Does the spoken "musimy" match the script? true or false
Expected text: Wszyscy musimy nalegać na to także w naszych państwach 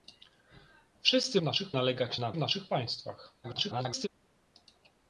false